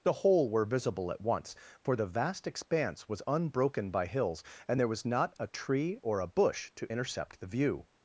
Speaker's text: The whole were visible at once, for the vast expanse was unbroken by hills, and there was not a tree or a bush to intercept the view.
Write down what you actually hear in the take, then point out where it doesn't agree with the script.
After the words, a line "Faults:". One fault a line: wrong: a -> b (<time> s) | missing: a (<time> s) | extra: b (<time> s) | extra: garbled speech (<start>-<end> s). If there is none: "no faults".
The whole were visible at once, for the vast expanse was unbroken by hills, and there was not a tree or a bush to intercept the view.
Faults:
no faults